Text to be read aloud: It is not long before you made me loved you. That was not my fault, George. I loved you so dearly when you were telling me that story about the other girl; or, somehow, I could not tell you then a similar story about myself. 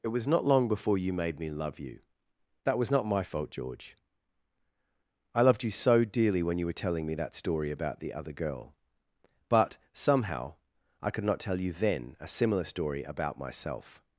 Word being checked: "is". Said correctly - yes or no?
no